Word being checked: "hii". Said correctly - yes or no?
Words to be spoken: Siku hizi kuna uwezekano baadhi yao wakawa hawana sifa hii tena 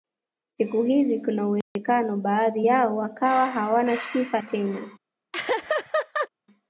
no